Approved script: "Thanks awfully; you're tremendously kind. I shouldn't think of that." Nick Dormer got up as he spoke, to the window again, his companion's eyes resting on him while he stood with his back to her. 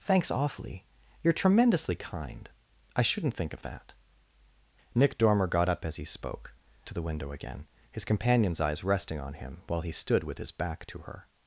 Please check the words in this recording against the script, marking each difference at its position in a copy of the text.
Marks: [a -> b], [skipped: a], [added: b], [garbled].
"Thanks awfully; you're tremendously kind. I shouldn't think of that." Nick Dormer got up as he spoke, to the window again, his companion's eyes resting on him while he stood with his back to her.